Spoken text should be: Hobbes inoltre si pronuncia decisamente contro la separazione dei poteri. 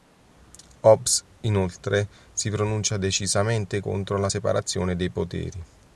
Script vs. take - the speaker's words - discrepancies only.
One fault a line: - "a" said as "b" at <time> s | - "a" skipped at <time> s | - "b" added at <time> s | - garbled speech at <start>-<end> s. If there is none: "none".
none